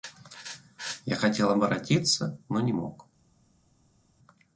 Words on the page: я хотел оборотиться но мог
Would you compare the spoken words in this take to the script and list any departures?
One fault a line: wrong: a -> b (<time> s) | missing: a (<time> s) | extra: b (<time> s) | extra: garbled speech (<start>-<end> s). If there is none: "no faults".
extra: не (2.6 s)